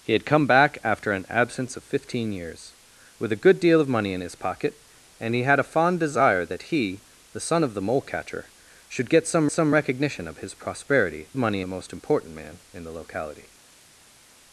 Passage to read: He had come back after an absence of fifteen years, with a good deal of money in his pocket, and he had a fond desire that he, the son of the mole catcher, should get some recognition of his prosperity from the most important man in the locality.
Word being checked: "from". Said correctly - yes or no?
no